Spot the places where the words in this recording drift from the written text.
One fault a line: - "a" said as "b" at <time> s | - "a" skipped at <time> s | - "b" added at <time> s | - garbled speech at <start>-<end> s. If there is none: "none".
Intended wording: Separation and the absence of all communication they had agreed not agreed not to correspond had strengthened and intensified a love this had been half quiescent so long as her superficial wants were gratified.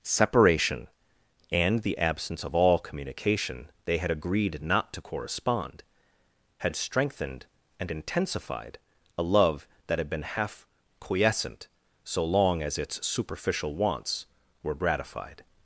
- "agreed not" skipped at 4.9 s
- "this" said as "that" at 9.9 s
- "her" said as "its" at 12.8 s